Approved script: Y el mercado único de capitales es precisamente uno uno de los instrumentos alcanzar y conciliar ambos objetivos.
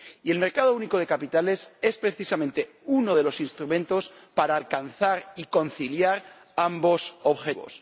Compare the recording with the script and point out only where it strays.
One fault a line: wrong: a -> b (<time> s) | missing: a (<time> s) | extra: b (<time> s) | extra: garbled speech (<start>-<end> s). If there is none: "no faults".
missing: uno (3.2 s)
extra: para (4.3 s)